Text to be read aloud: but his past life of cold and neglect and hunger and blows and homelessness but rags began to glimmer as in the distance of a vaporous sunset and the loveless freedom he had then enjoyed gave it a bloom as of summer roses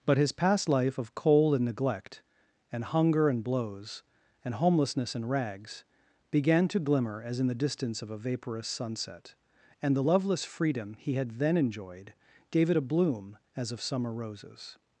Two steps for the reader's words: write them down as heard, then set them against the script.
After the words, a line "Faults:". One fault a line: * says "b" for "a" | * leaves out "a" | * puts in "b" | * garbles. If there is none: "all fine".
but his past life of cold and neglect and hunger and blows and homelessness and rags began to glimmer as in the distance of a vaporous sunset and the loveless freedom he had then enjoyed gave it a bloom as of summer roses
Faults:
* says "and" for "but"